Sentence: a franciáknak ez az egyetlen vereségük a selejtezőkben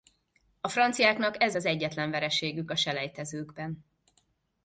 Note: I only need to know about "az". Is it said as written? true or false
true